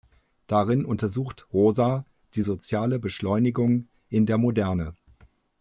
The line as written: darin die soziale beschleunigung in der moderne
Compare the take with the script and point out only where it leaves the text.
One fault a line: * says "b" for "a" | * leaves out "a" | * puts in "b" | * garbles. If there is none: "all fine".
* puts in "untersucht rosa"